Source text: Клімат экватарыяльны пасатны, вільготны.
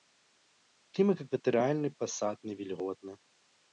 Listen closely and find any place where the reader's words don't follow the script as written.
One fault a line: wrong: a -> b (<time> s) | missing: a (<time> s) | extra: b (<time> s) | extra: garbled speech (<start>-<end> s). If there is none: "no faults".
no faults